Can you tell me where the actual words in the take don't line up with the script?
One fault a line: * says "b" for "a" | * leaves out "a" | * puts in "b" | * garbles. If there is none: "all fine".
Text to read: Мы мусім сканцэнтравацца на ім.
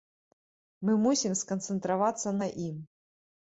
all fine